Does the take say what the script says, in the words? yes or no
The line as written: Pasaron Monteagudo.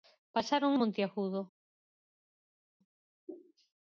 yes